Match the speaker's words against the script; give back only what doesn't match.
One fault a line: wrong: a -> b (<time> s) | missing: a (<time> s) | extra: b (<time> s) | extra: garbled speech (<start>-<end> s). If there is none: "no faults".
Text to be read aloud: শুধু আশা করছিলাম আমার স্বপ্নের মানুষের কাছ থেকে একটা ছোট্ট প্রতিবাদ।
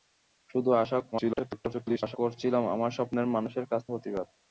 extra: garbled speech (1.1-2.2 s)
missing: থেকে একটা ছোট্ট (3.8 s)